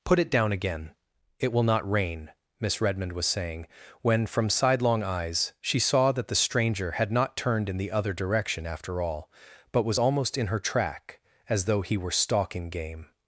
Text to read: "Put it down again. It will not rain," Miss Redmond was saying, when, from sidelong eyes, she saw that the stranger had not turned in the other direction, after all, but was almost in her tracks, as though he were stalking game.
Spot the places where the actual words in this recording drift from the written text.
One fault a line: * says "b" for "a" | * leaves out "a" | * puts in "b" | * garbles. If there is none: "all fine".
* says "track" for "tracks"